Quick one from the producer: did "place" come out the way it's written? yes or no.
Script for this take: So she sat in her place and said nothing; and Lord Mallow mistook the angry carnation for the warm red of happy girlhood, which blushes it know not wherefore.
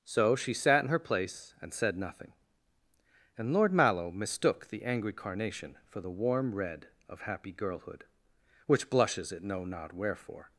yes